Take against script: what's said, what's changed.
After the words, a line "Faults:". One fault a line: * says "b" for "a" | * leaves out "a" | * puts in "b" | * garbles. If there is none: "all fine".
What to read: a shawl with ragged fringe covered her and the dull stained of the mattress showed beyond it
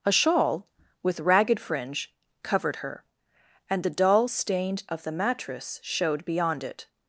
a shawl with ragged fringe covered her and the dull stained of the mattress showed beyond it
Faults:
all fine